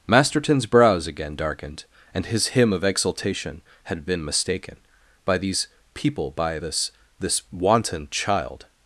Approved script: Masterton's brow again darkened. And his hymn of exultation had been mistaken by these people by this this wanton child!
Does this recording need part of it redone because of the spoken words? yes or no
yes